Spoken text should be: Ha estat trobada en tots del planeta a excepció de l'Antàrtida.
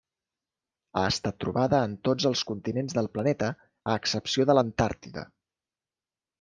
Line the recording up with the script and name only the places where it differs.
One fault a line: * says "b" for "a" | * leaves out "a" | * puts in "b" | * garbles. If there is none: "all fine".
* puts in "els continents"